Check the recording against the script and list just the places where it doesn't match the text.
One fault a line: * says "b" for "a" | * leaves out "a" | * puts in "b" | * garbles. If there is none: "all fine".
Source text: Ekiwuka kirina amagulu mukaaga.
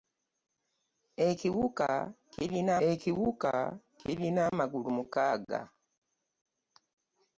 * puts in "ekiwuka kirina"